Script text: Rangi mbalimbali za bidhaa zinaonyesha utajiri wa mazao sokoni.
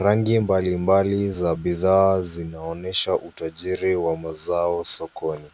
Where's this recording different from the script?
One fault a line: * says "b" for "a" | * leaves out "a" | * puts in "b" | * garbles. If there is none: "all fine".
all fine